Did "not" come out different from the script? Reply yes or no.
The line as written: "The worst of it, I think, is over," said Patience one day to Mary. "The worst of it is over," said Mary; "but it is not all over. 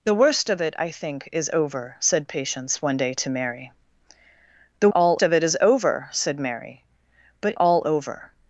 yes